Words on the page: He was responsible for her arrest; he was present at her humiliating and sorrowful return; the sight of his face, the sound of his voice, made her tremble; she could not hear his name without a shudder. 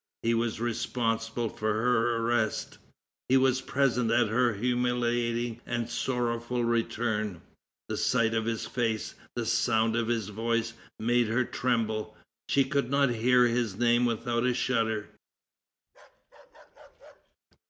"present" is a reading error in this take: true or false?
false